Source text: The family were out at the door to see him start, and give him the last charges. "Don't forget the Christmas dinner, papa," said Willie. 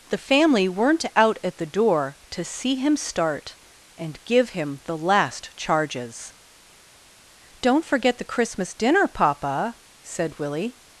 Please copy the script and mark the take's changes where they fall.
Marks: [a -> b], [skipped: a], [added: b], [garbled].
The family [were -> weren't] out at the door to see him start, and give him the last charges. "Don't forget the Christmas dinner, papa," said Willie.